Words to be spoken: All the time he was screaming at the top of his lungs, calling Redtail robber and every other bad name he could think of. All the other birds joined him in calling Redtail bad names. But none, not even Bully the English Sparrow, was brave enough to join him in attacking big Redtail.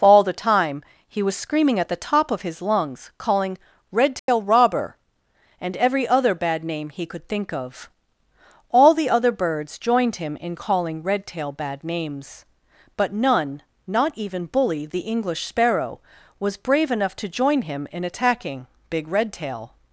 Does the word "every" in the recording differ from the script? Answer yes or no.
no